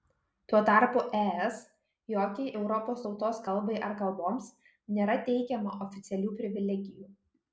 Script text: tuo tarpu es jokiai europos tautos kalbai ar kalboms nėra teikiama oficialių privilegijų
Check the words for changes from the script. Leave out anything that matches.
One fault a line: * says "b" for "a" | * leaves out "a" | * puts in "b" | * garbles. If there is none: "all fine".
all fine